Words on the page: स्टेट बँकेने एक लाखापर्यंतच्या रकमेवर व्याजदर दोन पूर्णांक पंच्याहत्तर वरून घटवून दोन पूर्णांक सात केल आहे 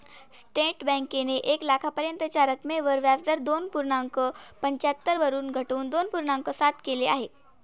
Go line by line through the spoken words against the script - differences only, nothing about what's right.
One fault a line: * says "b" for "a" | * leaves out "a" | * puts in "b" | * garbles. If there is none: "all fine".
all fine